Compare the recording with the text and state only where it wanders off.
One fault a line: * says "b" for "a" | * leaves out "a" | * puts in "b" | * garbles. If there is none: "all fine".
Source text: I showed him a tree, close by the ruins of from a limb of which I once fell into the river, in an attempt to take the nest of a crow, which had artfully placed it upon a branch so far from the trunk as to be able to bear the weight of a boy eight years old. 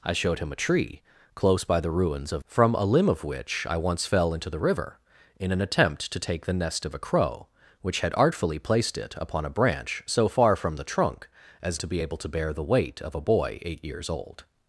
all fine